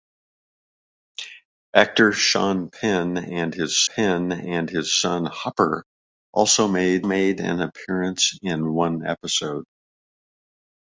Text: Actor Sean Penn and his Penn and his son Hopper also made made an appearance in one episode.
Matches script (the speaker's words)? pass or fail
pass